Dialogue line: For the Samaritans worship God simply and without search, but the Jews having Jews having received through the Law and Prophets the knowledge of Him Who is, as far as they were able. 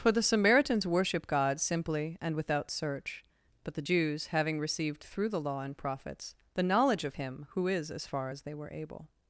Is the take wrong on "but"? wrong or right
right